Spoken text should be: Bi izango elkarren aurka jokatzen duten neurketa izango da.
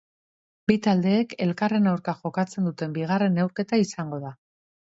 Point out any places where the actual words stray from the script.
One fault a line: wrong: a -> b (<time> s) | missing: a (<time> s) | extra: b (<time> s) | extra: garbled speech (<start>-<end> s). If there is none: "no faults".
wrong: izango -> taldeek (0.8 s)
extra: bigarren (3.0 s)